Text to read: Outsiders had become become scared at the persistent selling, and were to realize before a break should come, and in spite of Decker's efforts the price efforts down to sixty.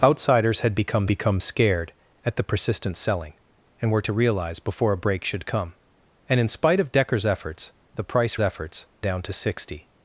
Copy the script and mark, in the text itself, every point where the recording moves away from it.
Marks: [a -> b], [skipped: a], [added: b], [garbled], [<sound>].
Outsiders had become become scared at the persistent selling, and were to realize before a break should come, and in spite of Decker's efforts the price efforts down to sixty.